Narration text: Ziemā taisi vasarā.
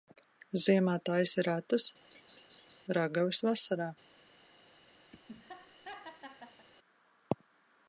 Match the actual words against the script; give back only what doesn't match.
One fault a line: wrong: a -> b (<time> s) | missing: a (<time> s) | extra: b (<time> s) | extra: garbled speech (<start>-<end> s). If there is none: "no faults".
extra: ratus ragavas (1.5 s)